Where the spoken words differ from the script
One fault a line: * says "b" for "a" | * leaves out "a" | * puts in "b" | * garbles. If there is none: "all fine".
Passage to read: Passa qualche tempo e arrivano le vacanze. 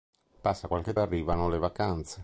* leaves out "tempo"